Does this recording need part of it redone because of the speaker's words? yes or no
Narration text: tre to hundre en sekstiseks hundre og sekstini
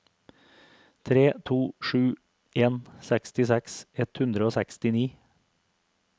yes